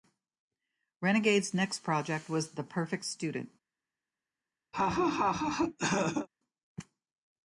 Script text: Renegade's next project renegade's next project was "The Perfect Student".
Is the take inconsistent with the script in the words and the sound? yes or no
yes